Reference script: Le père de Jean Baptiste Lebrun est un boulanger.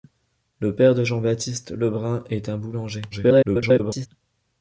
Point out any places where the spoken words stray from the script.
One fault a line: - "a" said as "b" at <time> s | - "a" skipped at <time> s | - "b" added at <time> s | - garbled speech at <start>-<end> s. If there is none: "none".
- garbled speech at 3.1-4.1 s